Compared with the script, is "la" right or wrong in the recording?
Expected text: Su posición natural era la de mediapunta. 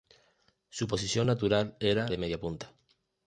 wrong